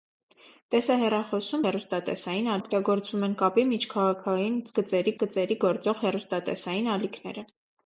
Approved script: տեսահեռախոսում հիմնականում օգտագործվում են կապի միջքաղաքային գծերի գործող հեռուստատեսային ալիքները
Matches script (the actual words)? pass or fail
fail